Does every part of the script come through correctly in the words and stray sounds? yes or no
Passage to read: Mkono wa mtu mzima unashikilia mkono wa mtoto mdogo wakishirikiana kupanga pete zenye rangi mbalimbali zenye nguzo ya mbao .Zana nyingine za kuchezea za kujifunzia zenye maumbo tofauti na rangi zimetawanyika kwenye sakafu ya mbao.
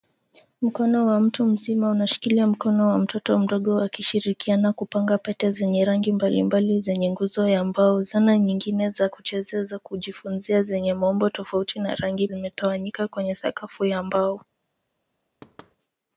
no